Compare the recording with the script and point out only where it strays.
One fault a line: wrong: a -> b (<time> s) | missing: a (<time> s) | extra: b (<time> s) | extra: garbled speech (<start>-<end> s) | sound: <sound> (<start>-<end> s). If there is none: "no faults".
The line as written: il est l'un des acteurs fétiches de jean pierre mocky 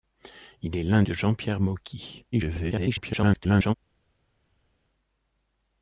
missing: des acteurs fétiches (1.0 s)
extra: garbled speech (2.3-3.7 s)